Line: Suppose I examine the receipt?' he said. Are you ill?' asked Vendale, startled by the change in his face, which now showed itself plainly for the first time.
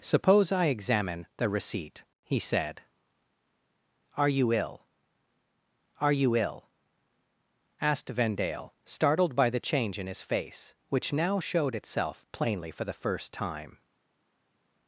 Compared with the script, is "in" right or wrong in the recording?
right